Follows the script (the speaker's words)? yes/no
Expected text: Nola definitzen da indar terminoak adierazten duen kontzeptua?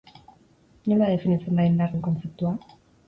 no